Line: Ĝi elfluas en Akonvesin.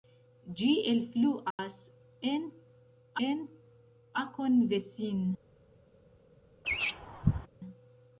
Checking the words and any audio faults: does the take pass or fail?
fail